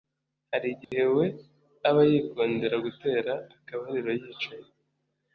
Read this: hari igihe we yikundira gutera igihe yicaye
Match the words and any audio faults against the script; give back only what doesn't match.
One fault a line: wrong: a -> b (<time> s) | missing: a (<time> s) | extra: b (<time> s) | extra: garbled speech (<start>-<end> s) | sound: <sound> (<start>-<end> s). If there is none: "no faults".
sound: dropout (0.8-0.9 s)
extra: aba (1.9 s)
wrong: igihe -> akabariro (3.6 s)